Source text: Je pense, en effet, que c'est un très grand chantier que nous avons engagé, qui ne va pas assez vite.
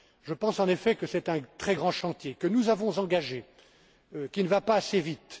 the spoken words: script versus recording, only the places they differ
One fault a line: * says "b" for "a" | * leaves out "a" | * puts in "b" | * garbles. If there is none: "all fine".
all fine